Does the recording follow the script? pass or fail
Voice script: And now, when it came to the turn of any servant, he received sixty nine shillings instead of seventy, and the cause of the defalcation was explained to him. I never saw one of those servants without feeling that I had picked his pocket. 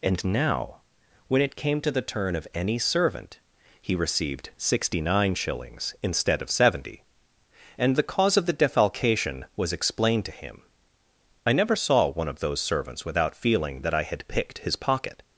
pass